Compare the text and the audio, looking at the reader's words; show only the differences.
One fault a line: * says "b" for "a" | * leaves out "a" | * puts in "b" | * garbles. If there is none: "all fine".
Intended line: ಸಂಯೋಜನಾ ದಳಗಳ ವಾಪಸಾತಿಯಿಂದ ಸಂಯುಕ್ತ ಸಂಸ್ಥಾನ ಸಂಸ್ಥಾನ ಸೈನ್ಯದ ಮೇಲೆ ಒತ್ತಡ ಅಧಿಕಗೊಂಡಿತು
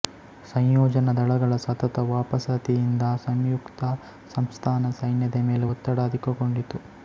* puts in "ಸತತ"
* leaves out "ಸಂಸ್ಥಾನ"